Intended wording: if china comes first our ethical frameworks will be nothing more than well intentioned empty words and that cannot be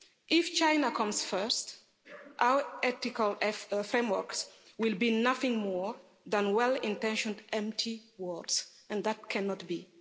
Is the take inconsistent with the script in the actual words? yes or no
no